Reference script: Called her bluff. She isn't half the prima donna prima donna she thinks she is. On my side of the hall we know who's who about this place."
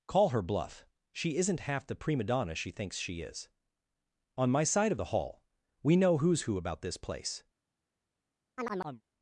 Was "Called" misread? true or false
true